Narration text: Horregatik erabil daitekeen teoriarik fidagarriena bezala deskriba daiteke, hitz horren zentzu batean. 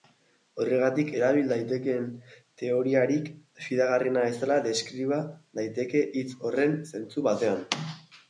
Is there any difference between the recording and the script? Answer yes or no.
no